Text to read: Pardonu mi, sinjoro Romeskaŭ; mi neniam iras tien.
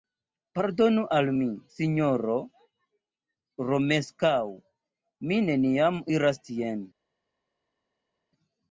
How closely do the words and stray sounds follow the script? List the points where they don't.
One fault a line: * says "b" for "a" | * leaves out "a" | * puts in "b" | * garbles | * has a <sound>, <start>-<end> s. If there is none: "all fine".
* puts in "al"